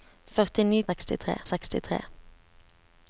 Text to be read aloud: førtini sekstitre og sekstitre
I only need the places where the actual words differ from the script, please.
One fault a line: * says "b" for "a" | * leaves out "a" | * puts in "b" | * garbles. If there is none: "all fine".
all fine